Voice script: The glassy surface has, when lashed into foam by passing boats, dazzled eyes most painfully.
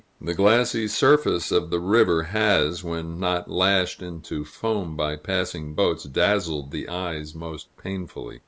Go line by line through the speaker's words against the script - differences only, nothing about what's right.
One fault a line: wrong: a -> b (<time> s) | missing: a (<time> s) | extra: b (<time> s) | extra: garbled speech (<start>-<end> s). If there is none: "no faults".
extra: of the river (1.5 s)
extra: not (3.2 s)
extra: the (6.7 s)